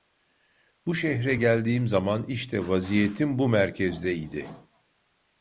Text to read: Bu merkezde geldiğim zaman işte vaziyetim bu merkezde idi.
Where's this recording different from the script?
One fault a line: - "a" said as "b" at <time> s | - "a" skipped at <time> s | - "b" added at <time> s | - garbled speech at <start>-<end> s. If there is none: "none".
- "merkezde" said as "şehre" at 0.9 s